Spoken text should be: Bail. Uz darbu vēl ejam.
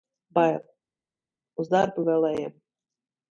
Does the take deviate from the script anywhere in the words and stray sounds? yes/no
no